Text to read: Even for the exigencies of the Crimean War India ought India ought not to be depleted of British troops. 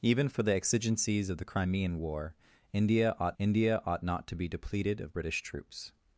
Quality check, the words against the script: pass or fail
pass